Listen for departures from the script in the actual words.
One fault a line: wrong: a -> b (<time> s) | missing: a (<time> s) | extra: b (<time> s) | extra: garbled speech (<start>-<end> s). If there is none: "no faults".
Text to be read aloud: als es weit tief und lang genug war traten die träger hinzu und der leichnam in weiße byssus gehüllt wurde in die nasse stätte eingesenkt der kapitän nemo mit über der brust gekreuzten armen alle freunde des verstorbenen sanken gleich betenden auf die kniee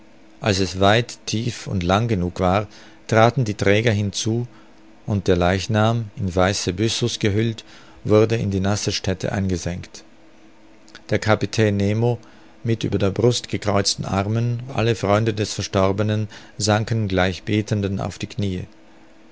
no faults